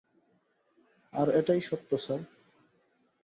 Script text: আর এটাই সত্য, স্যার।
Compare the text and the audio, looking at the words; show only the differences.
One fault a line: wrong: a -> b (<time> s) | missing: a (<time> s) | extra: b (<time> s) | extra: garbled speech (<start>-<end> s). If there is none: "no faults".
no faults